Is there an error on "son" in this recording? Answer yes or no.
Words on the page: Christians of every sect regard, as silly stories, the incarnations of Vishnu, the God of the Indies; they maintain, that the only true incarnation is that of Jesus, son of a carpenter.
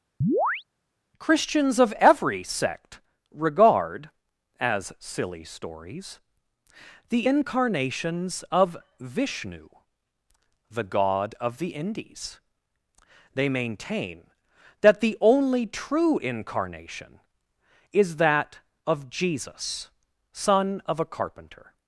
no